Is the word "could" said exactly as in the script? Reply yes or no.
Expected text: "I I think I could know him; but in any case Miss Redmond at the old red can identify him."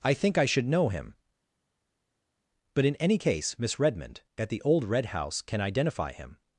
no